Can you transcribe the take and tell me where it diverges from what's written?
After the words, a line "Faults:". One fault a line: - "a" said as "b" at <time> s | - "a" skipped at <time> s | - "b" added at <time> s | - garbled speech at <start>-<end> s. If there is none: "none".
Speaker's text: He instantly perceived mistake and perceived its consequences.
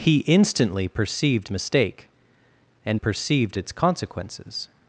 He instantly perceived mistake and perceived its consequences.
Faults:
none